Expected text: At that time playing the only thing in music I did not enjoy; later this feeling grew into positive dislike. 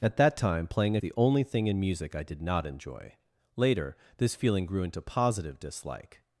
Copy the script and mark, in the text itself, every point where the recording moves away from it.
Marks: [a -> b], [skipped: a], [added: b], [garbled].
At that time playing the only thing in music I did not enjoy; later this feeling grew into positive dislike.